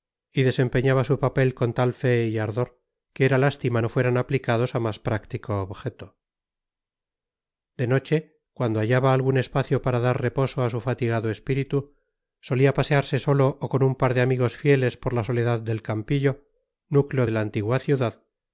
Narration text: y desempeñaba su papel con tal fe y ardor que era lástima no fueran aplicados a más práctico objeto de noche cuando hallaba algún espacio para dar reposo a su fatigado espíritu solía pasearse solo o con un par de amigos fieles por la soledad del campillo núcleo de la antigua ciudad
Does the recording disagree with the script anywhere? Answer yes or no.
no